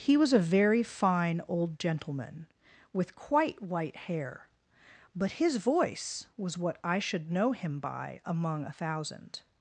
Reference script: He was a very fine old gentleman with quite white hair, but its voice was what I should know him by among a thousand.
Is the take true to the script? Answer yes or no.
no